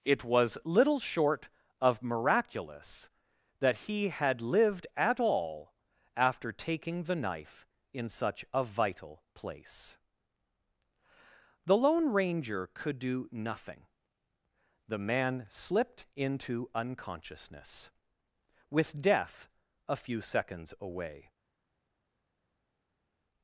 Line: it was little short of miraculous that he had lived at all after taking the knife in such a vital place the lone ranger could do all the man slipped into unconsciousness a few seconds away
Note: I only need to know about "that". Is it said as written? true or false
true